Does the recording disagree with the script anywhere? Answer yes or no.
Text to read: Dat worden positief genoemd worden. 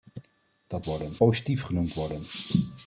no